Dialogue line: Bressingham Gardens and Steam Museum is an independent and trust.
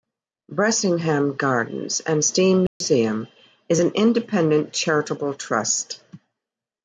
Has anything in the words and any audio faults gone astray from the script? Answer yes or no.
yes